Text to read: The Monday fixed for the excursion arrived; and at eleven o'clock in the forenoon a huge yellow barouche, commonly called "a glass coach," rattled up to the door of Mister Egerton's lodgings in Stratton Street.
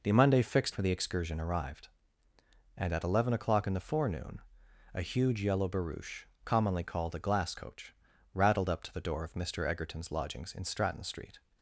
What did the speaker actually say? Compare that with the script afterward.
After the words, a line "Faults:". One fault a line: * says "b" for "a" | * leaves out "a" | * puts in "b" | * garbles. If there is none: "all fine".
The Monday fixed for the excursion arrived; and at eleven o'clock in the forenoon a huge yellow barouche, commonly called "a glass coach," rattled up to the door of Mister Egerton's lodgings in Stratton Street.
Faults:
all fine